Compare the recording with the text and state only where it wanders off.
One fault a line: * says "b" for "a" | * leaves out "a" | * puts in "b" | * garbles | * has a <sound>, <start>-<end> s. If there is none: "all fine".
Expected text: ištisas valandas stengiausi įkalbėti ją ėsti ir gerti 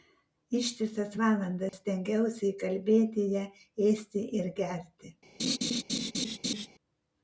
* has a dropout, 1.7-1.7 s
* has a laugh, 5.4-6.7 s